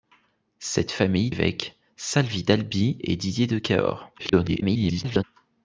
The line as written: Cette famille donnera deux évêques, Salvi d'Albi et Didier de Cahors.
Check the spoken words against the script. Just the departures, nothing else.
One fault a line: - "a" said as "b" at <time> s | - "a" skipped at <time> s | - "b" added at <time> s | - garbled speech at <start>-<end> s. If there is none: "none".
- "donnera deux" skipped at 1.3 s
- garbled speech at 4.2-5.2 s